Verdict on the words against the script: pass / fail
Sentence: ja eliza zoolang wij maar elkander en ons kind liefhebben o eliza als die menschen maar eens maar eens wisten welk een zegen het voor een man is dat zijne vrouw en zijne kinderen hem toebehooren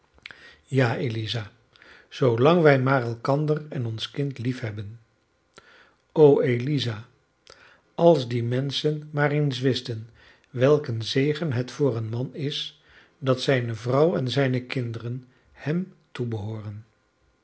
fail